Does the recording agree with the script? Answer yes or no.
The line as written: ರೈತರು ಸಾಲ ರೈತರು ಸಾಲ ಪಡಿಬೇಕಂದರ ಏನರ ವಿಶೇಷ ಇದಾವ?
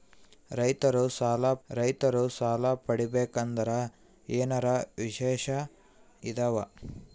yes